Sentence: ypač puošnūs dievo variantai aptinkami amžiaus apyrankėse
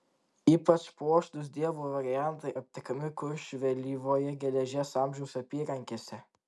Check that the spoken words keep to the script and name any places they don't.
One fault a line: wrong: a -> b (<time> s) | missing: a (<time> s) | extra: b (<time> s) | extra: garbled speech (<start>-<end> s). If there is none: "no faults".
extra: kuršių vėlyvojo geležies (3.2 s)